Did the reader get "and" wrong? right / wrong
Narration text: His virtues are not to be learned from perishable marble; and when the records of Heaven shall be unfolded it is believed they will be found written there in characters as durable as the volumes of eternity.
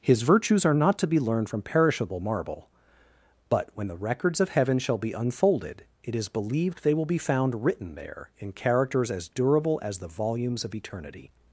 wrong